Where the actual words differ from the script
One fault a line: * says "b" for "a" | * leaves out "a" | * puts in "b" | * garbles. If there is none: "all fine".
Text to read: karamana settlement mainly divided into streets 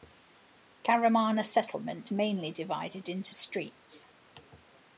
all fine